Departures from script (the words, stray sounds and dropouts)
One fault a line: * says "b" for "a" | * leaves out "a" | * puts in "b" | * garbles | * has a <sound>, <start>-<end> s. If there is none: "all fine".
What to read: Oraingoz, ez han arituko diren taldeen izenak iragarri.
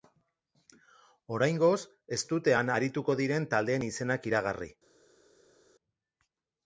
* puts in "dute"